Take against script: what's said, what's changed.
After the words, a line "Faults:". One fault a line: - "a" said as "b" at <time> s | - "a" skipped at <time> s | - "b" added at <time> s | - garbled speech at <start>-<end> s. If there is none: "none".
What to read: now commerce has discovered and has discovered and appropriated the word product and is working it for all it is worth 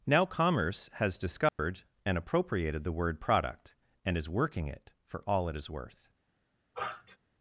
now commerce has discovered and appropriated the word product and is working it for all it is worth
Faults:
- "has discovered and" skipped at 2.2 s